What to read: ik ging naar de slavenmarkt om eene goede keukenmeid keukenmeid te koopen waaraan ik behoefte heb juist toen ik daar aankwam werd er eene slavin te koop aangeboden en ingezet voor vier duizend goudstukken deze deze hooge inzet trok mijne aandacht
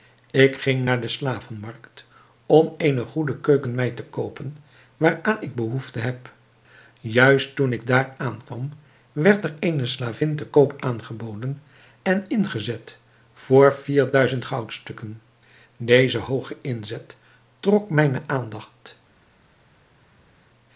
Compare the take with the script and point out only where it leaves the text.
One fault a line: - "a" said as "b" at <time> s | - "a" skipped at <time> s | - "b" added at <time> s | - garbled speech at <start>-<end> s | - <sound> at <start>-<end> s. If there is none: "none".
- "keukenmeid" skipped at 4.0 s
- "deze" skipped at 16.2 s